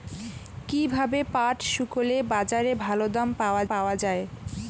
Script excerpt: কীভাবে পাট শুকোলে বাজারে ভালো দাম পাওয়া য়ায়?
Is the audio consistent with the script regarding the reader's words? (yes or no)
no